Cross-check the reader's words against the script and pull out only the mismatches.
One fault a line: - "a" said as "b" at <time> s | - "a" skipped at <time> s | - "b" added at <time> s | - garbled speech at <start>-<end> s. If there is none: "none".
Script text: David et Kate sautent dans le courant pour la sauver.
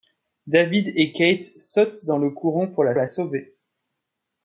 - "la" added at 3.0 s